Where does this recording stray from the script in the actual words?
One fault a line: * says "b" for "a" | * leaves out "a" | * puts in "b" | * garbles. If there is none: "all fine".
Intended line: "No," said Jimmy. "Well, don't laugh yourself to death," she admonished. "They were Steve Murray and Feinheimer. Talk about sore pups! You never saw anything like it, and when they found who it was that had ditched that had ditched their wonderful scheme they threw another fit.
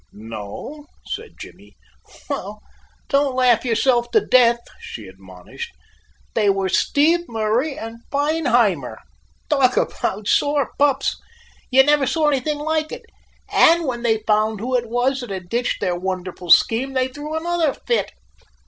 * leaves out "that had ditched"